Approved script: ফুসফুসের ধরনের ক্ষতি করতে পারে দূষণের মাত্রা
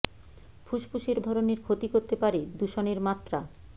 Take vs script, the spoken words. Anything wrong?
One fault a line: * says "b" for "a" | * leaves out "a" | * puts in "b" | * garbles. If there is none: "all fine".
all fine